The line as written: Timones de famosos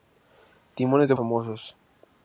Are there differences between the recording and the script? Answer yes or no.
no